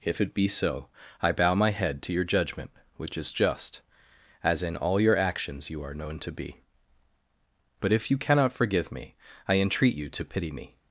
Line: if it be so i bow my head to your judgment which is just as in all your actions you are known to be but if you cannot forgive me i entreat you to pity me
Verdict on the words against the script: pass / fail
pass